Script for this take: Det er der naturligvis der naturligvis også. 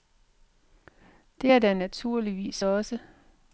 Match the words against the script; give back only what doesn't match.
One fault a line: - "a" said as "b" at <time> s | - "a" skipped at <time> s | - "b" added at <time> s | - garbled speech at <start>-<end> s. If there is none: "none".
- "der naturligvis" skipped at 2.6 s